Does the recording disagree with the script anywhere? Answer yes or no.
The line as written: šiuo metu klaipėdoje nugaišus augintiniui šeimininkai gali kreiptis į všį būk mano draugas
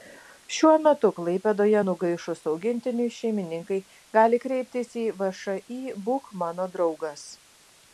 no